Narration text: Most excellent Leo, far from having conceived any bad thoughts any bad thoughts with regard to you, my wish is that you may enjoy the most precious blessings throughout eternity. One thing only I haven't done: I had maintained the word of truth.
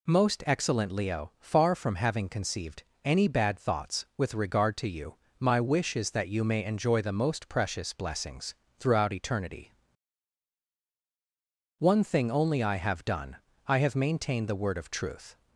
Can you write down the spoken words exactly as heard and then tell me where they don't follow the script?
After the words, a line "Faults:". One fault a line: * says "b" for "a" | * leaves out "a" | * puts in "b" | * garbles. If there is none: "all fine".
Most excellent Leo, far from having conceived any bad thoughts with regard to you, my wish is that you may enjoy the most precious blessings throughout eternity. One thing only I have done: I have maintained the word of truth.
Faults:
* leaves out "any bad thoughts"
* says "have" for "haven't"
* says "have" for "had"